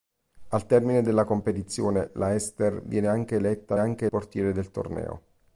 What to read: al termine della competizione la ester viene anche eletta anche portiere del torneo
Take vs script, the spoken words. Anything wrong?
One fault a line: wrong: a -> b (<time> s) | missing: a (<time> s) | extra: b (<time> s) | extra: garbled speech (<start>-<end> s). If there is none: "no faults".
no faults